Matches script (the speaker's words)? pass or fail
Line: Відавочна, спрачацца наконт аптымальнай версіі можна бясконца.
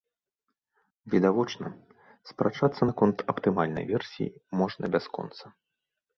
pass